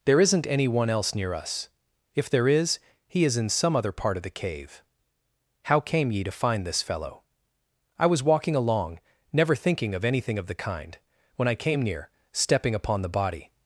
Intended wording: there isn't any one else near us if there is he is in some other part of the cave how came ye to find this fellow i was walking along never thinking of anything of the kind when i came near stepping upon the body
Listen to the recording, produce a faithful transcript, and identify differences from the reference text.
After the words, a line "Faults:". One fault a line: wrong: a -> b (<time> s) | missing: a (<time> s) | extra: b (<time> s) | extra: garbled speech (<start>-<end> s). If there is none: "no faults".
there isn't any one else near us if there is he is in some other part of the cave how came ye to find this fellow i was walking along never thinking of anything of the kind when i came near stepping upon the body
Faults:
no faults